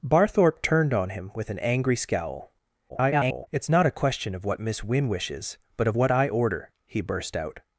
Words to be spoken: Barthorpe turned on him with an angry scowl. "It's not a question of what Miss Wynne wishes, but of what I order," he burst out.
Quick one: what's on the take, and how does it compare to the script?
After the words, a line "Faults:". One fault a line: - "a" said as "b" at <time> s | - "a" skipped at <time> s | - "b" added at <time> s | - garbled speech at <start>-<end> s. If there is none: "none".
Barthorpe turned on him with an angry scowl. [garbled] "It's not a question of what Miss Wynne wishes, but of what I order," he burst out.
Faults:
- garbled speech at 2.9-3.5 s